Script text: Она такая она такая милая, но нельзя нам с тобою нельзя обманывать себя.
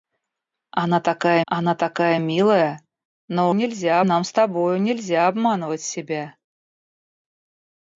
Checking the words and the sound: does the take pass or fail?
pass